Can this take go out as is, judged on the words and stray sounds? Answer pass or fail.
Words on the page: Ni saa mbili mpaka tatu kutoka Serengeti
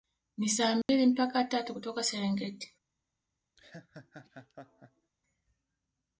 fail